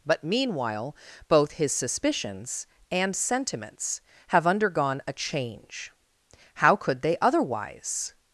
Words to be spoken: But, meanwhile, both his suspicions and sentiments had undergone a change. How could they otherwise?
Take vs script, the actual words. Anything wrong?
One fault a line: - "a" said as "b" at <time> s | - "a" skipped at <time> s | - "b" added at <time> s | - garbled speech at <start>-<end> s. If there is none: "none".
- "had" said as "have" at 4.3 s